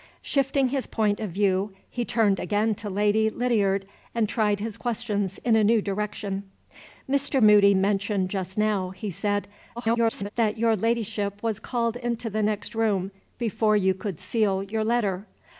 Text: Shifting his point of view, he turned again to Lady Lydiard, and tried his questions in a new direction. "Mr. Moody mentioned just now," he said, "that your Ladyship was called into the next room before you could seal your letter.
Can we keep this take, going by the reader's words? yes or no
no